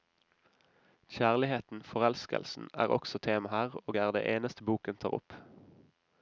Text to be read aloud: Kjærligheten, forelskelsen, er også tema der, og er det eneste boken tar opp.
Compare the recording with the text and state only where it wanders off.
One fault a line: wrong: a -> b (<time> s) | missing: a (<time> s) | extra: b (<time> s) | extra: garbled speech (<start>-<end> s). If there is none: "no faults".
wrong: der -> her (3.5 s)